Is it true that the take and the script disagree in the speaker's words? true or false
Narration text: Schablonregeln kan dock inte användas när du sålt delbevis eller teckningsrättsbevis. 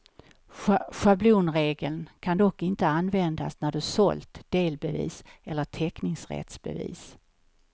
false